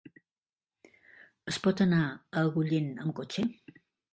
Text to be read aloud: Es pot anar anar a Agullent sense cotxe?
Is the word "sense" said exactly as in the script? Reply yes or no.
no